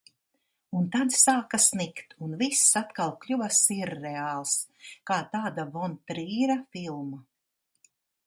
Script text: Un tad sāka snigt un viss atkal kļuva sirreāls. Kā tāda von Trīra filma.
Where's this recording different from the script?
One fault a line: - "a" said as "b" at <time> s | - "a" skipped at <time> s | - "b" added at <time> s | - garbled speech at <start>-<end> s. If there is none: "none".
none